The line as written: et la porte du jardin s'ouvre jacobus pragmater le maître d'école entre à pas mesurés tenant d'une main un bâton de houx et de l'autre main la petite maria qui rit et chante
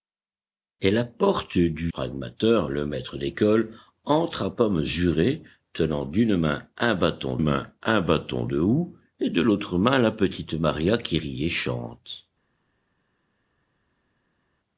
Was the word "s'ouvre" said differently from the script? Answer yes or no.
yes